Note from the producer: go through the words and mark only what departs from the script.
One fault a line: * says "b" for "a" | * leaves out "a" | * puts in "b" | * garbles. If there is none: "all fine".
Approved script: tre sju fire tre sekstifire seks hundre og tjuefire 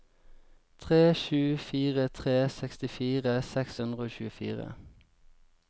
all fine